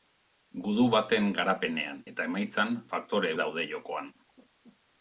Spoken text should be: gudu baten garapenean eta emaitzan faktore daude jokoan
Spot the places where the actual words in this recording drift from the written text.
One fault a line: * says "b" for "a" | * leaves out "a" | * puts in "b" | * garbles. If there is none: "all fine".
all fine